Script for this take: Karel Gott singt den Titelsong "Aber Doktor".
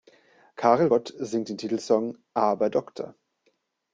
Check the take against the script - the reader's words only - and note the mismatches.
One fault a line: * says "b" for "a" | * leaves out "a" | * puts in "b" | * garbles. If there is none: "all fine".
all fine